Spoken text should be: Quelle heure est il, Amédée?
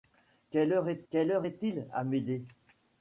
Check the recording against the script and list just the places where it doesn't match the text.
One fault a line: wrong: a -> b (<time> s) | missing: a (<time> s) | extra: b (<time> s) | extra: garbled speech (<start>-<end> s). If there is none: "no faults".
extra: quelle heure est (1.1 s)